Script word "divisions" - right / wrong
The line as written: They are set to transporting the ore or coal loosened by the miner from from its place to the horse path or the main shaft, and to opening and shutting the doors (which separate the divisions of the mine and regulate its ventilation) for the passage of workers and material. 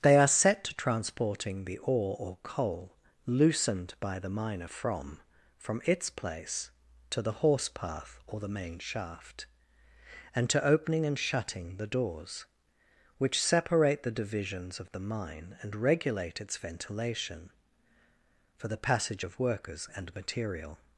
right